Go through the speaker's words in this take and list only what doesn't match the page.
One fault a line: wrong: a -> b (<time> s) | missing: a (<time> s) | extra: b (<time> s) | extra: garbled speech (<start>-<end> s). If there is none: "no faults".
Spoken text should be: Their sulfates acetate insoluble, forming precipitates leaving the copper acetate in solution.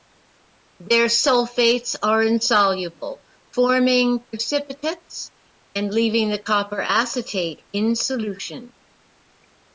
wrong: acetate -> are (2.0 s)
extra: and (5.8 s)